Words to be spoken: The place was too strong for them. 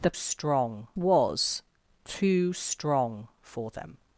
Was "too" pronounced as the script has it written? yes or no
yes